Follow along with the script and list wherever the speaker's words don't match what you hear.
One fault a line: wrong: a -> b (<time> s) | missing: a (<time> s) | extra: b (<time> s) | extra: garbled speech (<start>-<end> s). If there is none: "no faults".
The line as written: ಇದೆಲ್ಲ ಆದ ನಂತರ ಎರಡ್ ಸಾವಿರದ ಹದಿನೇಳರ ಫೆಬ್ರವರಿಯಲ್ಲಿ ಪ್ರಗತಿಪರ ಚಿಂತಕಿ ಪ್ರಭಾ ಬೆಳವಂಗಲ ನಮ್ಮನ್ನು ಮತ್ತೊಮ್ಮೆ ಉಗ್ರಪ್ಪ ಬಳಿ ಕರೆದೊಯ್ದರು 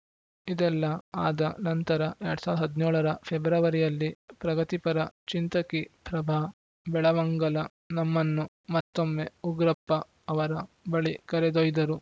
extra: ಅವರ (10.3 s)